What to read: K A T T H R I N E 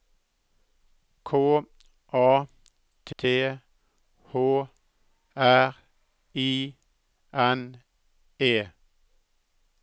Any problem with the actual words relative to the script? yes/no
no